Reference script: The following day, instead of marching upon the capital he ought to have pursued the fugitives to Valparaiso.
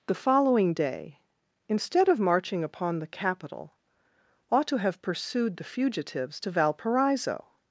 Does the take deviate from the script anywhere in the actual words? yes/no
yes